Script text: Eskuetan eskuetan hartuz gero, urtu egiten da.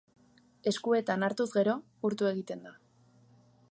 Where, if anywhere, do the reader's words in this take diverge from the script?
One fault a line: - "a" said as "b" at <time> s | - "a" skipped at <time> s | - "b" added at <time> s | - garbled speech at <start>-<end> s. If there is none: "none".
- "eskuetan" skipped at 1.3 s